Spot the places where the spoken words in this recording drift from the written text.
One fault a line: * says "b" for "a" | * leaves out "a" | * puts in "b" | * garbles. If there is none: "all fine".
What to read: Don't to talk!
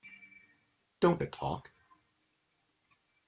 all fine